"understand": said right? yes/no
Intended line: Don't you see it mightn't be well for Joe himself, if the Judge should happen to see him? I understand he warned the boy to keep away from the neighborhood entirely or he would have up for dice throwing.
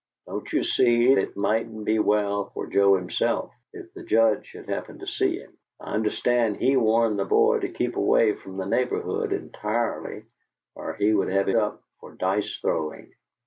yes